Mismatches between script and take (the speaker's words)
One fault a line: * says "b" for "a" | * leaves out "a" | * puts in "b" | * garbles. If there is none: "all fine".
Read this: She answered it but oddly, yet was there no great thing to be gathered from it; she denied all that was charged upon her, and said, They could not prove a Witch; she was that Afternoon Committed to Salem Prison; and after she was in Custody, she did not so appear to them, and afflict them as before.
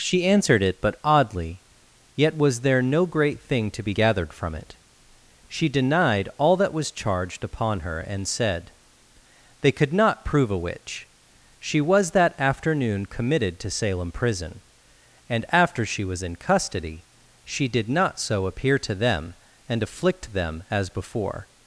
all fine